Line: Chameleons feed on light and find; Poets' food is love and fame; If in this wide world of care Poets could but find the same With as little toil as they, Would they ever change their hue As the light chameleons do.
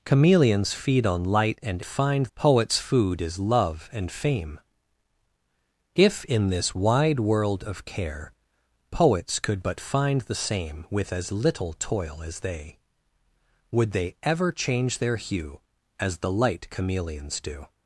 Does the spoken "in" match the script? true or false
true